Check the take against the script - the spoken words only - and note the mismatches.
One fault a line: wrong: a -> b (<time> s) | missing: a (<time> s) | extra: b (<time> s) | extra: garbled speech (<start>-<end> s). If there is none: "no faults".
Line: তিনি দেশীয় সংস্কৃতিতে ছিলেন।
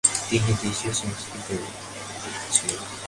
no faults